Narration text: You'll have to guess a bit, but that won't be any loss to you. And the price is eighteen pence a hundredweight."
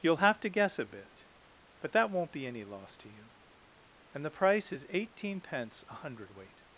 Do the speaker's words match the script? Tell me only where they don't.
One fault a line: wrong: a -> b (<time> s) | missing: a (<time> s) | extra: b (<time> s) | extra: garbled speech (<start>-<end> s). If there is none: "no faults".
no faults